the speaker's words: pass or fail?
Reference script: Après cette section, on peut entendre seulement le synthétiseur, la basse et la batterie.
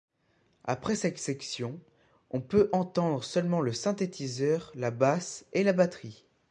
pass